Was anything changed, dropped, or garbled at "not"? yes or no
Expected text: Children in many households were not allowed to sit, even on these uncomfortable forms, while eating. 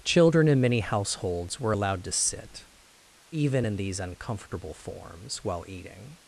yes